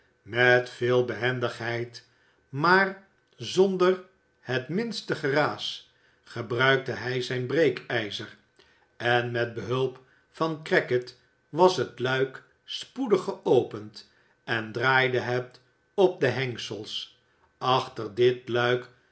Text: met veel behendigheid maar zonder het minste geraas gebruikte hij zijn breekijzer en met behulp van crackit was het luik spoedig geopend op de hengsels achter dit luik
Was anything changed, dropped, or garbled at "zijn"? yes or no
no